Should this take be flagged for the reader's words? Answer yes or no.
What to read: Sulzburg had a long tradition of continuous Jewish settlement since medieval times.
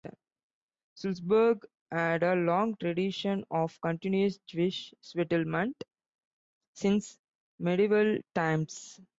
no